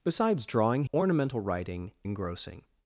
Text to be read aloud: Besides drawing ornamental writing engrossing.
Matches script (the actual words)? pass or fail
pass